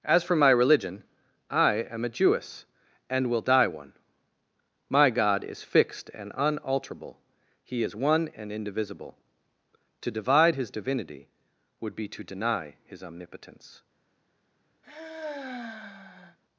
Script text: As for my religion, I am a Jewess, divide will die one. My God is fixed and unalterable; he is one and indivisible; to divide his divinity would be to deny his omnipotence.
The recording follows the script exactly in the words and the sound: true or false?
false